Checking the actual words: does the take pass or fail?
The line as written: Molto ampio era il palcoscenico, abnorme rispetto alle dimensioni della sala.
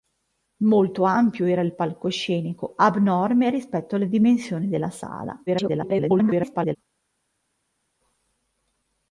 fail